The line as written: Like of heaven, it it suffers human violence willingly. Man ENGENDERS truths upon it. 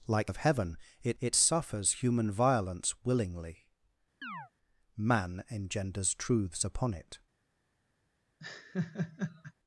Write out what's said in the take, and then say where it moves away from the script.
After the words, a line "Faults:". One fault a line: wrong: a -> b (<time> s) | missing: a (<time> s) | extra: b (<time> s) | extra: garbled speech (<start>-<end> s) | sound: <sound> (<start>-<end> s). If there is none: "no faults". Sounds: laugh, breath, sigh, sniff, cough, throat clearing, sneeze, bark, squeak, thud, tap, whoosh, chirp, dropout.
Like of heaven, it it suffers human violence willingly. Man ENGENDERS truths upon it.
Faults:
sound: chirp (4.2-4.5 s)
sound: laugh (8.4-9.5 s)